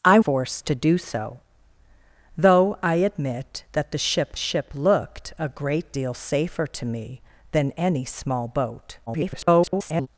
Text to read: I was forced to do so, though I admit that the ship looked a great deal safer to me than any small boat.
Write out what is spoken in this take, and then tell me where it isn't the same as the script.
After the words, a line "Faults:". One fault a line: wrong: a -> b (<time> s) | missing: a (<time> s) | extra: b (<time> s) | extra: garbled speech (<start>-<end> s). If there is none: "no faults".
I forced to do so, though I admit that the ship ship looked a great deal safer to me than any small boat. [garbled]
Faults:
missing: was (0.2 s)
extra: ship (4.3 s)
extra: garbled speech (9.1-10.1 s)